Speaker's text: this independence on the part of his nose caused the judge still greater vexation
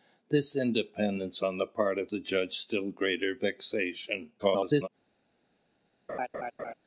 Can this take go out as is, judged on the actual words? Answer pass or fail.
fail